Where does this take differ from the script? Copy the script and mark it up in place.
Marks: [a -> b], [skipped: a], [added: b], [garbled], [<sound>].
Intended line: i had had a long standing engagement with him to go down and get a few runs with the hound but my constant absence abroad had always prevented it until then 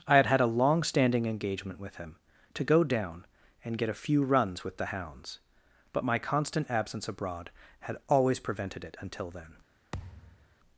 i had had a long standing engagement with him to go down and get a few runs with the [hound -> hounds] but my constant absence abroad had always prevented it until then [thud]